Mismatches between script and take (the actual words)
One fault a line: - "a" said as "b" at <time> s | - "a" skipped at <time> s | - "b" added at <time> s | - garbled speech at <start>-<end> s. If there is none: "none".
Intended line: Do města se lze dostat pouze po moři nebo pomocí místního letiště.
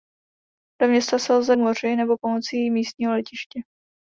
- "dostat pouze po" skipped at 1.6 s